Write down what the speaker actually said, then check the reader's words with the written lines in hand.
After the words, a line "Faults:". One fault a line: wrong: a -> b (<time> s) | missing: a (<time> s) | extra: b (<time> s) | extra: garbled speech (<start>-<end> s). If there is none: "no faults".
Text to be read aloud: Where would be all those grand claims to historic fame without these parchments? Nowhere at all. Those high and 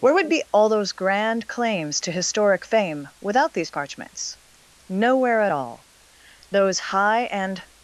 Where would be all those grand claims to historic fame without these parchments? Nowhere at all. Those high and
Faults:
no faults